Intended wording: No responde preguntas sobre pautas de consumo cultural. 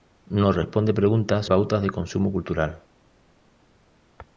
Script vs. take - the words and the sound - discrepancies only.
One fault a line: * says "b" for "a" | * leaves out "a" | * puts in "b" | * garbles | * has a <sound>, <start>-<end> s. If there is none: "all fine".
* leaves out "sobre"